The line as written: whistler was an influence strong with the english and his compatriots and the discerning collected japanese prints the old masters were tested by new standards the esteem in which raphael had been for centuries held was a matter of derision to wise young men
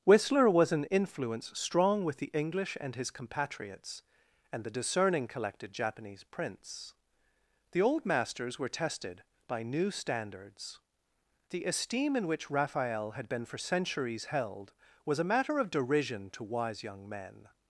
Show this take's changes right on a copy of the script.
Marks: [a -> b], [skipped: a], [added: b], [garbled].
whistler was an influence strong with the english and his compatriots and the discerning collected japanese prints the old masters were tested by new standards the esteem in which raphael had been for centuries held was a matter of derision to wise young men